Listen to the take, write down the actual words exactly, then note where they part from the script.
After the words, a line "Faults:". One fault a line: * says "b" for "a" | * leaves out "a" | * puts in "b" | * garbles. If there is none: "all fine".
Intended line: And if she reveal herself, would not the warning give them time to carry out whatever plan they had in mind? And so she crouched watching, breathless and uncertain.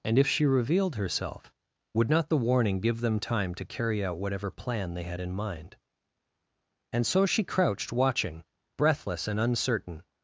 And if she revealed herself, would not the warning give them time to carry out whatever plan they had in mind? And so she crouched watching, breathless and uncertain.
Faults:
* says "revealed" for "reveal"